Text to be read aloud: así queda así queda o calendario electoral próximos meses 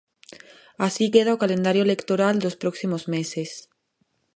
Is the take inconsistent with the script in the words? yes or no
yes